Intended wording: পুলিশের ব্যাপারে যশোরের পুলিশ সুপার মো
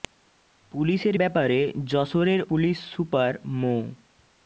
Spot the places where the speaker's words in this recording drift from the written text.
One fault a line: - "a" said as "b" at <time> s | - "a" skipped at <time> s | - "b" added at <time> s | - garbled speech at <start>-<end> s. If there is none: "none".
none